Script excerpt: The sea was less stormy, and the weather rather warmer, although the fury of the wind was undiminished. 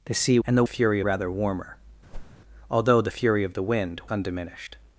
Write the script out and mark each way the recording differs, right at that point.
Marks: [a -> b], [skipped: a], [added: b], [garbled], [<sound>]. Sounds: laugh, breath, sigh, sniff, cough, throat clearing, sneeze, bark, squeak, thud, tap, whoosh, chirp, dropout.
The sea [skipped: was less stormy,] and the [weather -> fury] rather warmer, [whoosh] although the fury of the wind [skipped: was] undiminished.